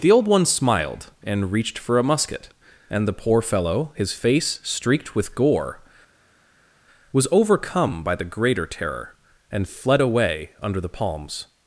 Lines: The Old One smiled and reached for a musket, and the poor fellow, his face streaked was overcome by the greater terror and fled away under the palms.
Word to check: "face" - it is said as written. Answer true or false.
true